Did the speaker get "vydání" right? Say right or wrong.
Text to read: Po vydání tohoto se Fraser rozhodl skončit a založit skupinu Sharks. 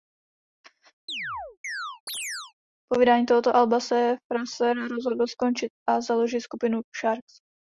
right